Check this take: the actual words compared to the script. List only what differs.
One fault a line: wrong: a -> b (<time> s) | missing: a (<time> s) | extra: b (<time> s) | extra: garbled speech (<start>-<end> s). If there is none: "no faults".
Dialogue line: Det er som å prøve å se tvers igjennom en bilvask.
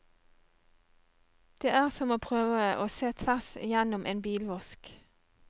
no faults